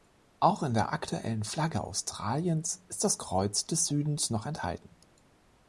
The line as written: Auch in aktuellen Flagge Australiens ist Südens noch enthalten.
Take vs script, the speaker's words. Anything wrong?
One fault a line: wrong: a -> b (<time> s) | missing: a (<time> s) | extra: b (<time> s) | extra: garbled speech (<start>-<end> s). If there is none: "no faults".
extra: der (0.7 s)
extra: das Kreuz des (3.0 s)